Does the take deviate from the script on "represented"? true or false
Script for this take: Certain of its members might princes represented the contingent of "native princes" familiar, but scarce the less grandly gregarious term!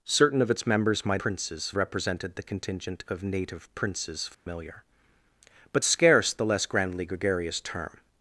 false